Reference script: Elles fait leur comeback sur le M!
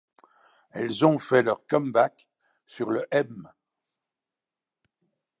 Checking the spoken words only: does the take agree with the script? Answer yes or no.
no